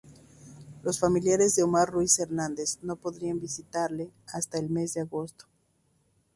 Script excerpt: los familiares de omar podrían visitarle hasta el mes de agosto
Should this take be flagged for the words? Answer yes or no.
yes